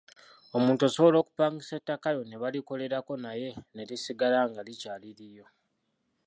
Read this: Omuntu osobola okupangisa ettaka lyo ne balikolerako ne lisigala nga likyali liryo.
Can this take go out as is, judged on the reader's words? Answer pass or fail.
fail